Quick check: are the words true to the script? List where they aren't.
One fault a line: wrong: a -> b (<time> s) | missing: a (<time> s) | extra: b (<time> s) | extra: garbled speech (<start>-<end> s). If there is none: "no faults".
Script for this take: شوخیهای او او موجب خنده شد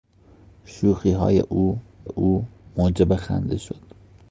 no faults